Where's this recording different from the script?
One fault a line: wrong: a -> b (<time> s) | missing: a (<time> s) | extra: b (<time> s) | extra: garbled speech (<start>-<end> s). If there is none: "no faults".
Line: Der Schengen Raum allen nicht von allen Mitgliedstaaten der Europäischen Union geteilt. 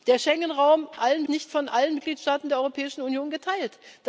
no faults